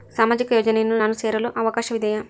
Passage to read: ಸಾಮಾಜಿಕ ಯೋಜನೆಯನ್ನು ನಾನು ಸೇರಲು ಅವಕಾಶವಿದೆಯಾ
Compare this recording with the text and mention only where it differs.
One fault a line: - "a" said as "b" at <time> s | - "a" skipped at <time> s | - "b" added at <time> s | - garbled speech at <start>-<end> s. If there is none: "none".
none